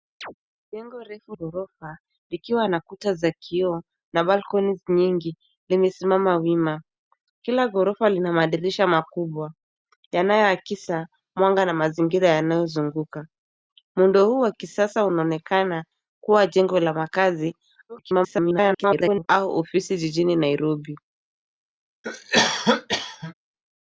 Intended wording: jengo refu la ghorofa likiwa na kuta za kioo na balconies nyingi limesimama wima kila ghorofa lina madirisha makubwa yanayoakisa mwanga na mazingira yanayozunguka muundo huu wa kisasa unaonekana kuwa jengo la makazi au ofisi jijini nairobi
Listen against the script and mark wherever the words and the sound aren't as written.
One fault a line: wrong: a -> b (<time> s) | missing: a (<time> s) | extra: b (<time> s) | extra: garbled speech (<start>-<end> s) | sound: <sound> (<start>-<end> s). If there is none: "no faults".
sound: chirp (0.2-0.3 s)
missing: la (1.4 s)
extra: garbled speech (17.9-19.3 s)
sound: cough (22.0-23.3 s)